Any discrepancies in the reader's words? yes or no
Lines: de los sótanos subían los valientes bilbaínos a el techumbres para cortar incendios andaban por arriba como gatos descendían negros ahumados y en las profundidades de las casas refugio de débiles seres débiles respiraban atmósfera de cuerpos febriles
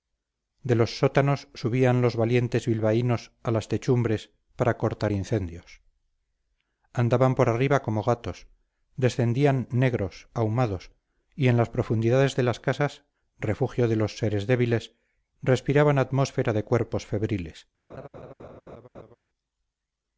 yes